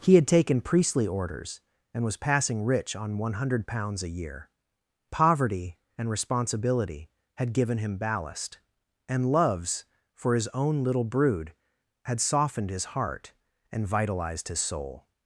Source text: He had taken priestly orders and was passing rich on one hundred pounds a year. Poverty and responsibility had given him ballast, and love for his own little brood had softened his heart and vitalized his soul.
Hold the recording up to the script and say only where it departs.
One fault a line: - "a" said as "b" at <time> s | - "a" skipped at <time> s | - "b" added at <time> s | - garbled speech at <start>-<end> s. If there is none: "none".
- "love" said as "loves" at 9.3 s